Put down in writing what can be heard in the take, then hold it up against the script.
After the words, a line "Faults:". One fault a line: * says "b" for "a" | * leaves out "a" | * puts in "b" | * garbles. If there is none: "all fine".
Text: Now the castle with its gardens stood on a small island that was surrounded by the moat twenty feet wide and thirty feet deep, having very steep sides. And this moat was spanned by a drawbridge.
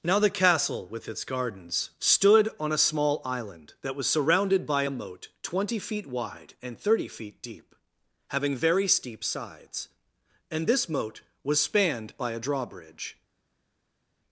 Now the castle with its gardens stood on a small island that was surrounded by a moat twenty feet wide and thirty feet deep, having very steep sides. And this moat was spanned by a drawbridge.
Faults:
* says "a" for "the"